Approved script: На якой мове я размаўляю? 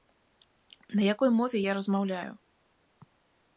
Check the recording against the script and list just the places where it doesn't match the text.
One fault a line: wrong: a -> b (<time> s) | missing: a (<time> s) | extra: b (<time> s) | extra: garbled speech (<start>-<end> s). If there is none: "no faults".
no faults